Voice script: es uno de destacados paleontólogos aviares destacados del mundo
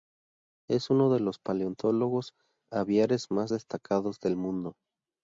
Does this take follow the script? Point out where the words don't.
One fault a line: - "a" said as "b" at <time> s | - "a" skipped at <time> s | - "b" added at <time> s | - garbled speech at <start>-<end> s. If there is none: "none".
- "destacados" said as "los" at 1.2 s
- "más" added at 3.3 s